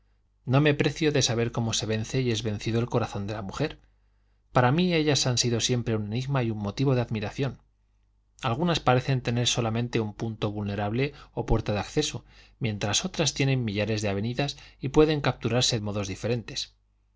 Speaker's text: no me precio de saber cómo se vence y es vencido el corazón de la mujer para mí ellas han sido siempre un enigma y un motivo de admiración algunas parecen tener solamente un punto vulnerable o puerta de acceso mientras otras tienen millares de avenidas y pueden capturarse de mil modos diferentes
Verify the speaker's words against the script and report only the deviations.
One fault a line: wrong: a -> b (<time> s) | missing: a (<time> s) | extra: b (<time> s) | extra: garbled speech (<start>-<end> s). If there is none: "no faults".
missing: de mil (15.8 s)